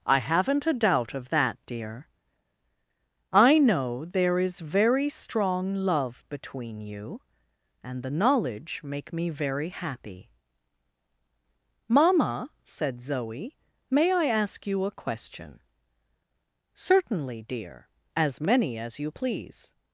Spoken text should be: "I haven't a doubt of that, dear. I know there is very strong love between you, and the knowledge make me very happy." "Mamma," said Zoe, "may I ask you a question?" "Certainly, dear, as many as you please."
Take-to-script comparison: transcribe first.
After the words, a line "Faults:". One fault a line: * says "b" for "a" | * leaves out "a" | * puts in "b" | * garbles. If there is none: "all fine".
"I haven't a doubt of that, dear. I know there is very strong love between you, and the knowledge make me very happy." "Mamma," said Zoe, "may I ask you a question?" "Certainly, dear, as many as you please."
Faults:
all fine